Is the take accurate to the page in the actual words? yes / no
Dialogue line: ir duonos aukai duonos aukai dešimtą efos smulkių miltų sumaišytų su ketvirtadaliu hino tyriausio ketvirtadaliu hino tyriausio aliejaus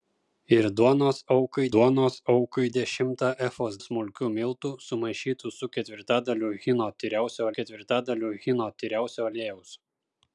yes